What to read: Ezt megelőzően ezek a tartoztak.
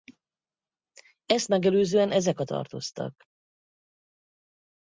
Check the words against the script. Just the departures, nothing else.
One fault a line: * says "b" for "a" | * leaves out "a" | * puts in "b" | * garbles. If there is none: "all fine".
all fine